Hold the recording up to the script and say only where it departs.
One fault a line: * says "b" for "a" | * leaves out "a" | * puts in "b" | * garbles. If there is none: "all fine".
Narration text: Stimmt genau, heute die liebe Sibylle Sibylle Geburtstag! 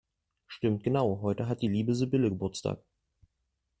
* puts in "hat"
* leaves out "Sibylle"